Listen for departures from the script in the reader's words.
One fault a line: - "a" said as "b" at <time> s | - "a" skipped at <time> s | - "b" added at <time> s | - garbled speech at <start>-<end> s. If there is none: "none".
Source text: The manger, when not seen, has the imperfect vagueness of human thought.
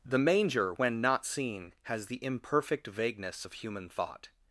none